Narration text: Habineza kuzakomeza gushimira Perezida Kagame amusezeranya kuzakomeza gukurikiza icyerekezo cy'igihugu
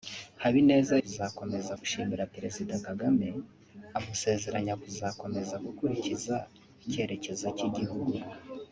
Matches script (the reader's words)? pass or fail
pass